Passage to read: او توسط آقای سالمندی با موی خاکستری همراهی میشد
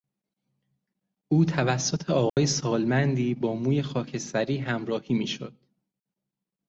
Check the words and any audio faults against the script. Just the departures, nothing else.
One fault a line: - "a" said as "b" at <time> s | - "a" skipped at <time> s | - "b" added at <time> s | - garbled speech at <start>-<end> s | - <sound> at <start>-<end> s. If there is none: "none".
- dropout at 2.3-2.4 s